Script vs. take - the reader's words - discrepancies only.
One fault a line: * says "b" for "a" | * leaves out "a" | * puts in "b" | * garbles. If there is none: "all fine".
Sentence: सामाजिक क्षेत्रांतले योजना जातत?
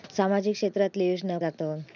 all fine